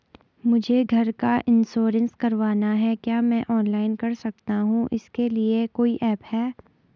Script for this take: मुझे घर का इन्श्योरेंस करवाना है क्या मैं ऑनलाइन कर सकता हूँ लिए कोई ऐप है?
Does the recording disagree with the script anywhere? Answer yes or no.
yes